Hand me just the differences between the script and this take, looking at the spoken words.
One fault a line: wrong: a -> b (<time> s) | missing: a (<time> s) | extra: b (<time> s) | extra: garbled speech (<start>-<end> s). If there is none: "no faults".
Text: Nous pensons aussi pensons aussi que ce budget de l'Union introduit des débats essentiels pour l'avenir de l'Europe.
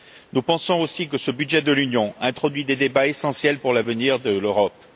missing: pensons aussi (1.1 s)